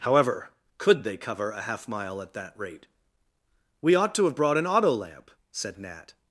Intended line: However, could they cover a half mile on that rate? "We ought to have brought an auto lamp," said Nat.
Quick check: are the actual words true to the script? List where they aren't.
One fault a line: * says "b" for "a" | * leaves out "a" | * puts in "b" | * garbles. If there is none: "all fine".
* says "at" for "on"